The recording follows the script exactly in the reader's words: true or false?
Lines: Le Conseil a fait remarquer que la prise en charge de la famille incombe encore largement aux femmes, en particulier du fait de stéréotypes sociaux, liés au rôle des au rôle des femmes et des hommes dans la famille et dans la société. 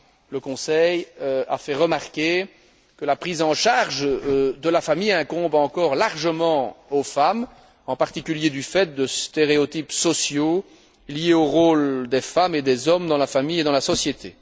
false